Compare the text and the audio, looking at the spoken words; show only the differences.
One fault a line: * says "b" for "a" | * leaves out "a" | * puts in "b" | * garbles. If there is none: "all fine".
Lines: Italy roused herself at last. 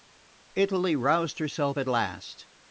all fine